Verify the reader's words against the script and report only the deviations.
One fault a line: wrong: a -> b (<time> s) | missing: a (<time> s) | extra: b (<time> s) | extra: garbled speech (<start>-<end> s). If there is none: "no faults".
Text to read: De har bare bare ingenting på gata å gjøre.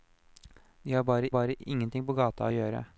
no faults